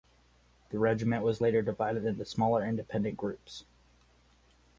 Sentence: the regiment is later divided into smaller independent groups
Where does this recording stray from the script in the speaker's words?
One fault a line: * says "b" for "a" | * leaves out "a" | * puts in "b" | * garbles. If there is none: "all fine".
* says "was" for "is"